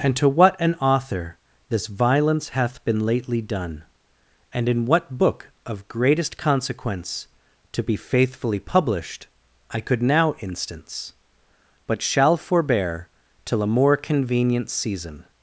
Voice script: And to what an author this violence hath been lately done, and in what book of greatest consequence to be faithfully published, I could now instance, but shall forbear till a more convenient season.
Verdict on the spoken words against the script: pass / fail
pass